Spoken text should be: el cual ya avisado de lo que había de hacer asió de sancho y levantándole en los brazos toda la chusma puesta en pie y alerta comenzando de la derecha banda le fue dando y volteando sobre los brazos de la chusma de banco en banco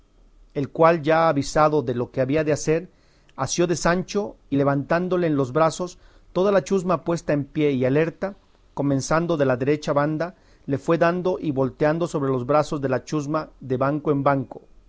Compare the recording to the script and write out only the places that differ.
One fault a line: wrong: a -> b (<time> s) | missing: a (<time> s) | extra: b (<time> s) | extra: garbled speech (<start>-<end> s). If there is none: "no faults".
no faults